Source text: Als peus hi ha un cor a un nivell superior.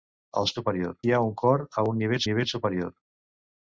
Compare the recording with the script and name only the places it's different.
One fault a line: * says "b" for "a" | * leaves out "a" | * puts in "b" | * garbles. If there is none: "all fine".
* says "superior" for "peus"
* puts in "nivell"